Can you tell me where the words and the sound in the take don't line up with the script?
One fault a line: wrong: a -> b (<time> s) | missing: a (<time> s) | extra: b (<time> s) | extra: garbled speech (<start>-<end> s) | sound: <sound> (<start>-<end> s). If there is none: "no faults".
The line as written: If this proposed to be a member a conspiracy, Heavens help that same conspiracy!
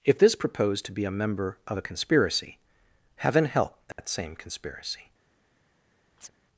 extra: of (1.7 s)
wrong: Heavens -> Heaven (3.2 s)
sound: dropout (3.9-4.0 s)
sound: chirp (6.2-6.3 s)